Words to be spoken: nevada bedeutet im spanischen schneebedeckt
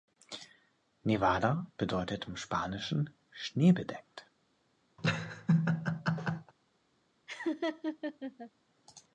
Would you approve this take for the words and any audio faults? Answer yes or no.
no